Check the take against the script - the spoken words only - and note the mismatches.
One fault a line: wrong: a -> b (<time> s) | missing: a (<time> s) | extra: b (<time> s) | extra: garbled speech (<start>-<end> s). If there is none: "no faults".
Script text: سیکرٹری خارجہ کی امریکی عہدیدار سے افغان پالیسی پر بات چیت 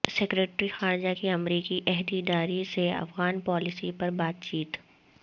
no faults